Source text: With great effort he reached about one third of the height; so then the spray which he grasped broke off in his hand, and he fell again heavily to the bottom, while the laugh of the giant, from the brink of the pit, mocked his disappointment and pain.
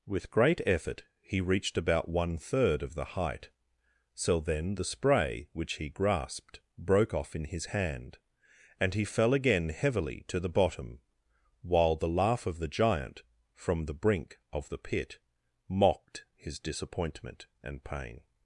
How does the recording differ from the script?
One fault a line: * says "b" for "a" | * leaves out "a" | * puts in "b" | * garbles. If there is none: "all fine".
all fine